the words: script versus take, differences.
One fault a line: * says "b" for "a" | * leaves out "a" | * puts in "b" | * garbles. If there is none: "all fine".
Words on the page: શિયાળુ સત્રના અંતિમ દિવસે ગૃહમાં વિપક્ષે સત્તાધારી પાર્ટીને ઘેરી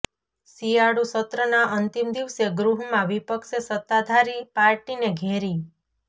all fine